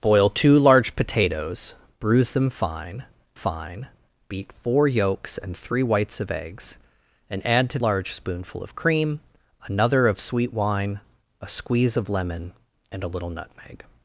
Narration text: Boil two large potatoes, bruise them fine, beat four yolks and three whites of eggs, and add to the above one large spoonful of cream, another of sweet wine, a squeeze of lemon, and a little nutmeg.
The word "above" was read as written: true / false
false